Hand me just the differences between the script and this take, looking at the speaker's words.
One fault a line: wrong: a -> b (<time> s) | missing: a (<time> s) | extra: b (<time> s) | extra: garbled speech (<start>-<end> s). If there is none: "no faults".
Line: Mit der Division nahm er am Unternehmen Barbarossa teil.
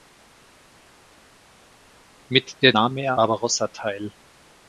missing: Division (2.7 s)
missing: am Unternehmen (3.2 s)